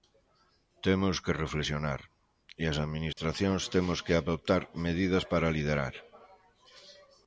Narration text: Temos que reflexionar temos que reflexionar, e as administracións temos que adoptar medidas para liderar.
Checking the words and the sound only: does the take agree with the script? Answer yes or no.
no